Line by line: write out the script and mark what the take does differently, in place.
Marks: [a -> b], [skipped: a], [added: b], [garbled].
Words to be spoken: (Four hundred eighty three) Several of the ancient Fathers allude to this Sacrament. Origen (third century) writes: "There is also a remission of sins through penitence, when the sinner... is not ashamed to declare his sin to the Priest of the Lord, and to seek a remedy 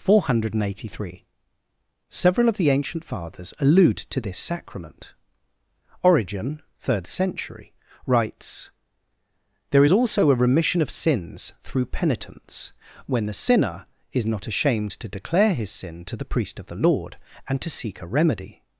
(Four hundred eighty three) Several of the ancient Fathers allude to this Sacrament. Origen (third century) writes: "There is also a remission of sins through penitence, when the sinner... is not ashamed to declare his sin to the Priest of the Lord, and to seek a remedy